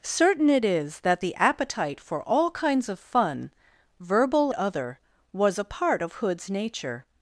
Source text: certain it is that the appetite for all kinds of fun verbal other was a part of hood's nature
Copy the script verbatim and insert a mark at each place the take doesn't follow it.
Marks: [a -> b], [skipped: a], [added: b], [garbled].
certain it is that the appetite for all kinds of fun verbal other was a part of hood's nature